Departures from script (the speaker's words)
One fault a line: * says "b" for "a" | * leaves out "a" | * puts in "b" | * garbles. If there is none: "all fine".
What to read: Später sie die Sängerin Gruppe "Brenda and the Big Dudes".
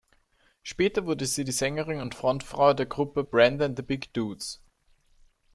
* puts in "wurde"
* puts in "und Frontfrau der"